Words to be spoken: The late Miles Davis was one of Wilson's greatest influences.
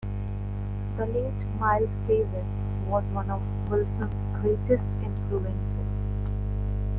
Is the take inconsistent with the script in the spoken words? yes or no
no